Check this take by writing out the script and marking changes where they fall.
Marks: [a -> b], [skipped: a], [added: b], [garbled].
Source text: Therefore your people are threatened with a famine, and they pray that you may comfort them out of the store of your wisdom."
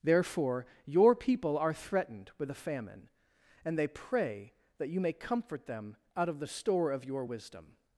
Therefore your people are threatened with a famine, and they pray that you may comfort them out of the store of your wisdom."